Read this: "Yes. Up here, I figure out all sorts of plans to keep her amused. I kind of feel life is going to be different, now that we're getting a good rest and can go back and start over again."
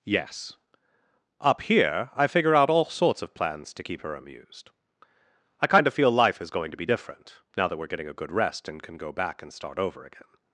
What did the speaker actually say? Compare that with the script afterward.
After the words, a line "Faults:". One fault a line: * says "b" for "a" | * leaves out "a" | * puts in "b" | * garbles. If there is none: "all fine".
"Yes. Up here, I figure out all sorts of plans to keep her amused. I kind of feel life is going to be different, now that we're getting a good rest and can go back and start over again."
Faults:
all fine